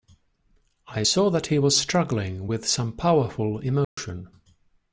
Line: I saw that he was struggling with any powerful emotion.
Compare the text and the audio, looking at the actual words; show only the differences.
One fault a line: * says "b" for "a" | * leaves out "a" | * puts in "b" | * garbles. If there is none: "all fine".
* says "some" for "any"